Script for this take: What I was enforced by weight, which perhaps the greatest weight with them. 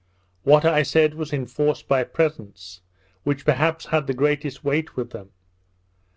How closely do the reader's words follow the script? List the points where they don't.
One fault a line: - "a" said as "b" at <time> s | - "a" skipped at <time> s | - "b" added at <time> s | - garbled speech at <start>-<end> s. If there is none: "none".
- "said" added at 0.8 s
- "weight" said as "presents" at 2.0 s
- "had" added at 3.9 s